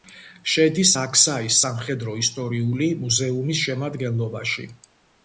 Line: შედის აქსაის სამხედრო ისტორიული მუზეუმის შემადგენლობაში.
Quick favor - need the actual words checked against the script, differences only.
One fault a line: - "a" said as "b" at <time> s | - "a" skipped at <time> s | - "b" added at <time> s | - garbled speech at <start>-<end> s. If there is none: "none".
none